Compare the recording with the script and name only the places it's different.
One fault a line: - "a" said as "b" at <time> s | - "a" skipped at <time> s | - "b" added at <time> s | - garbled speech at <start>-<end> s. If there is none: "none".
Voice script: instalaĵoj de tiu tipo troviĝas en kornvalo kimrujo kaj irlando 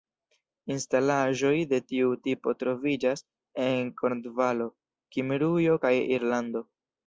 none